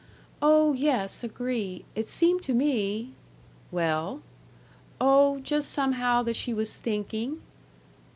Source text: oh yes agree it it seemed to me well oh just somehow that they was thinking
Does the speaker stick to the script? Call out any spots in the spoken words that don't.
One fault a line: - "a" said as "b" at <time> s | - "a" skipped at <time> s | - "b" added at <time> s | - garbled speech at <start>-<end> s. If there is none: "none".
- "it" skipped at 2.1 s
- "they" said as "she" at 6.3 s